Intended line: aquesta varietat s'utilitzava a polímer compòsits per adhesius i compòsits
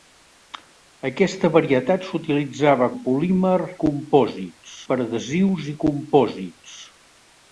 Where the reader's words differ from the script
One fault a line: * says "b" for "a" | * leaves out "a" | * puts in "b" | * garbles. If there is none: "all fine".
all fine